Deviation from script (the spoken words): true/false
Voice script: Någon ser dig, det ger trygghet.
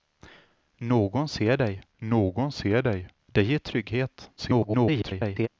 true